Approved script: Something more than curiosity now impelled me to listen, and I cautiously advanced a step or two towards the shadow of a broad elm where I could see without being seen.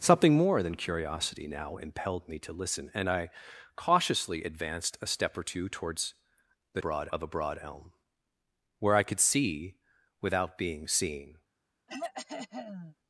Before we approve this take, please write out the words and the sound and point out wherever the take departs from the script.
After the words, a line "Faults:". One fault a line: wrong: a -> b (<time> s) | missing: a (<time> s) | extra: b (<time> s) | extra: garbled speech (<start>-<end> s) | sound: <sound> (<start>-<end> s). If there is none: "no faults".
Something more than curiosity now impelled me to listen, and I cautiously advanced a step or two towards the broad of a broad elm where I could see without being seen.
Faults:
wrong: shadow -> broad (6.8 s)
sound: throat clearing (11.9-13.0 s)